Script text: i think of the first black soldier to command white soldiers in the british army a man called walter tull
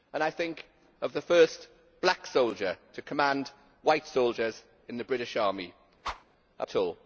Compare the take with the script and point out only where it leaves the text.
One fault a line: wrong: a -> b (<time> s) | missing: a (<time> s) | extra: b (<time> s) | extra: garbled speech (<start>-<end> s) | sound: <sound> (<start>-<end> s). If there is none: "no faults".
sound: whoosh (6.0-6.2 s)
missing: man called walter (6.7 s)